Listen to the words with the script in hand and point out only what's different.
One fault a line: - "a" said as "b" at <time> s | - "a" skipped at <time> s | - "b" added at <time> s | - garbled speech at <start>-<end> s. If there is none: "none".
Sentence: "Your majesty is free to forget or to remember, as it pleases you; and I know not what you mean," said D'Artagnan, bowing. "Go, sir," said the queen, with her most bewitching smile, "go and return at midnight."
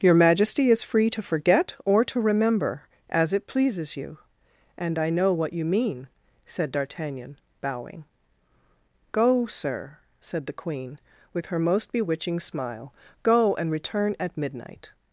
- "not" skipped at 5.3 s